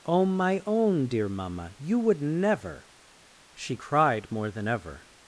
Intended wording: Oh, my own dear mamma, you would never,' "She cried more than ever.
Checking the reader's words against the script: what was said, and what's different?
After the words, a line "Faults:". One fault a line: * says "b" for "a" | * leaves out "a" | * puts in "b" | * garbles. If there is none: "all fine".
Oh, my own dear mamma, you would never,' "She cried more than ever.
Faults:
all fine